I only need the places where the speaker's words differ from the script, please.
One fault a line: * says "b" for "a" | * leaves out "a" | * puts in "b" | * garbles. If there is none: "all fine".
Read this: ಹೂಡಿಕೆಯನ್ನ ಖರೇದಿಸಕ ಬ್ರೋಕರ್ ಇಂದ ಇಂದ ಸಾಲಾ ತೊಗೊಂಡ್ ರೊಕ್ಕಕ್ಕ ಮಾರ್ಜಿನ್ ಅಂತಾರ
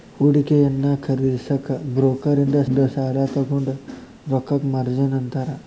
all fine